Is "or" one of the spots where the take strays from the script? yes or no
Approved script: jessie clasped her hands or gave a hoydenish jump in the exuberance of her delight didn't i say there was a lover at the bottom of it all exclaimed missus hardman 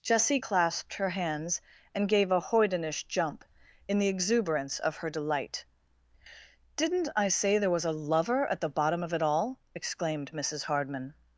yes